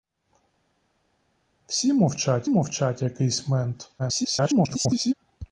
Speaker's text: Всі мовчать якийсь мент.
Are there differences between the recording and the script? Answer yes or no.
yes